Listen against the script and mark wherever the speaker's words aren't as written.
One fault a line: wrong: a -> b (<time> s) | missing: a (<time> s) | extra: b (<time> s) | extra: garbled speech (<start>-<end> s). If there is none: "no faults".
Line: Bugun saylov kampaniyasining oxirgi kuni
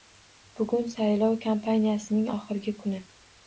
no faults